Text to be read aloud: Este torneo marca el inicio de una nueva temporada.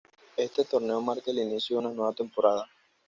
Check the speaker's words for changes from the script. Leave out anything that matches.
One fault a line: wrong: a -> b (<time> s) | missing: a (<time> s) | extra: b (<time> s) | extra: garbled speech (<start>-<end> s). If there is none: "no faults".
no faults